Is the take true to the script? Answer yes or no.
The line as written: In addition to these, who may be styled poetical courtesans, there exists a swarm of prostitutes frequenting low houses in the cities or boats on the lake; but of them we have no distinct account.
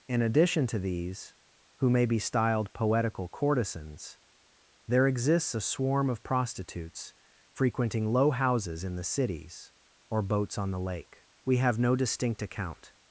no